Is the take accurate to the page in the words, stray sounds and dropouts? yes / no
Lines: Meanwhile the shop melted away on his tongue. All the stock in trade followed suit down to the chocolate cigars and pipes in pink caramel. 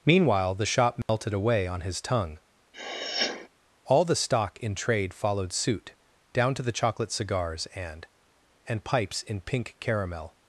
no